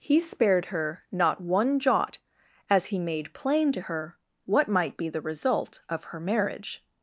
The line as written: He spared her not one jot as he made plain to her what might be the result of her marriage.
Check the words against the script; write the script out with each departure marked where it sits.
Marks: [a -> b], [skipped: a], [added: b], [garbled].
He spared her not one jot as he made plain to her what might be the result of her marriage.